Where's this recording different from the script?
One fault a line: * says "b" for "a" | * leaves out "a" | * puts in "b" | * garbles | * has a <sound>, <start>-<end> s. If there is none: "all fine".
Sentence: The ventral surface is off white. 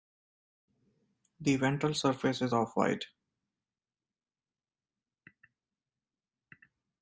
all fine